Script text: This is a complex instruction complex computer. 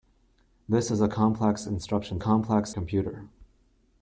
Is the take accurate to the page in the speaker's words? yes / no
yes